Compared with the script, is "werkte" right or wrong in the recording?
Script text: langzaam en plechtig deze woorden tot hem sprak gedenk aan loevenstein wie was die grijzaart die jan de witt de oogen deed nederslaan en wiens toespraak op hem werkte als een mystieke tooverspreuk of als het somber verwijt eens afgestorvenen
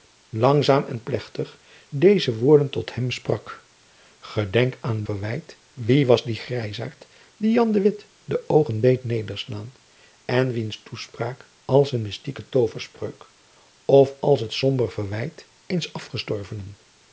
wrong